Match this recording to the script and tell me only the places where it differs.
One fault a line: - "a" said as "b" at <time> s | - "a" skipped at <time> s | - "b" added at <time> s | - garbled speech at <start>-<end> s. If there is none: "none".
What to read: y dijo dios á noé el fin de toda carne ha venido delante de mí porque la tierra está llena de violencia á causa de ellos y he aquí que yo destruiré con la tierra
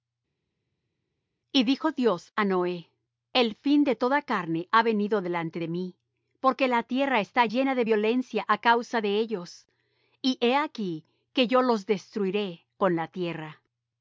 - "los" added at 11.6 s